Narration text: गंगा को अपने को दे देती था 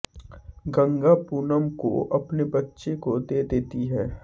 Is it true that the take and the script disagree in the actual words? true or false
true